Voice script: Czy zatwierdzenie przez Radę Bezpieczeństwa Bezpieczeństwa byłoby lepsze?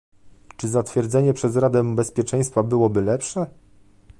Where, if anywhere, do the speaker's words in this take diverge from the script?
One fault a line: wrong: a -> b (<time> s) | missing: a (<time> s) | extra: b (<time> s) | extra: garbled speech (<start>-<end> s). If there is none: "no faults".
missing: Bezpieczeństwa (2.6 s)